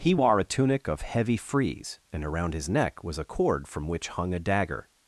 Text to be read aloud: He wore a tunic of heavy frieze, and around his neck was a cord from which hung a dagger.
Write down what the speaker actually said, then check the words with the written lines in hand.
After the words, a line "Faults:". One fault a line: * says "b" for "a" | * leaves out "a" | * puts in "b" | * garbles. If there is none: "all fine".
He wore a tunic of heavy frieze, and around his neck was a cord from which hung a dagger.
Faults:
all fine